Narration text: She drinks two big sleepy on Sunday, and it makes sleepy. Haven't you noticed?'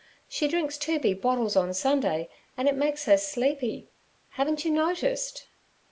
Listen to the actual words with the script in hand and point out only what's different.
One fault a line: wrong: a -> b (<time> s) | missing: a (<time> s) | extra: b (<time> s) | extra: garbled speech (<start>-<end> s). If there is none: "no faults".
wrong: sleepy -> bottles (1.2 s)
extra: her (3.0 s)